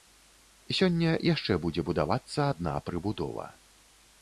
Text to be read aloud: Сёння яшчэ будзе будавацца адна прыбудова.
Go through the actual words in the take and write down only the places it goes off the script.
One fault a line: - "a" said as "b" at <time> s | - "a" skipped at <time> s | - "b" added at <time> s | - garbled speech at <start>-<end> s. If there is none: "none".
none